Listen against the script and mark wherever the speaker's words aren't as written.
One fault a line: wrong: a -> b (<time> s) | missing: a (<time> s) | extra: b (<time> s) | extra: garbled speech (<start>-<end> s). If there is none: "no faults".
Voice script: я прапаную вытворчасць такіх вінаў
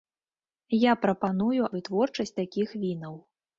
no faults